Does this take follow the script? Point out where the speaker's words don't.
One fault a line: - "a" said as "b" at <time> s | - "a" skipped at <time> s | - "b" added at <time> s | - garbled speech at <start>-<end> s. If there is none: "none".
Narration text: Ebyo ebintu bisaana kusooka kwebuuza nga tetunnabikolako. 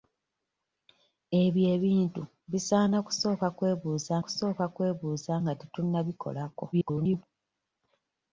- "kusooka kwebuuza" added at 4.2 s
- garbled speech at 6.7-7.2 s